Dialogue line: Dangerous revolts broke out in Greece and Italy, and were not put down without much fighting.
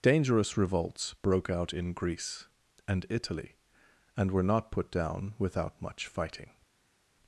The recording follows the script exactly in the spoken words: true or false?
true